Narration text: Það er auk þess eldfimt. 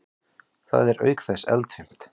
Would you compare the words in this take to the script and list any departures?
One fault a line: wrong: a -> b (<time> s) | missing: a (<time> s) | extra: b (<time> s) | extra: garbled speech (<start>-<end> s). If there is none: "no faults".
no faults